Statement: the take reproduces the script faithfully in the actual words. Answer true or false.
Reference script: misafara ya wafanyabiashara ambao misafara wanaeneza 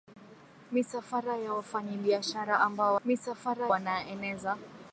true